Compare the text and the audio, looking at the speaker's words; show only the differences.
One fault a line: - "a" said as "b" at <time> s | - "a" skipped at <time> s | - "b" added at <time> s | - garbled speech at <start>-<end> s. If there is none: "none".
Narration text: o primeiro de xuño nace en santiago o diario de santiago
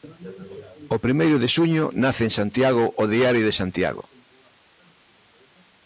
none